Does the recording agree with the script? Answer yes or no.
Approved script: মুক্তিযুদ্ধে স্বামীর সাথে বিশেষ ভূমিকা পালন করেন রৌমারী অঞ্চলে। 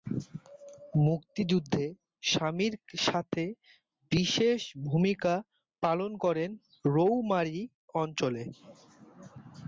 yes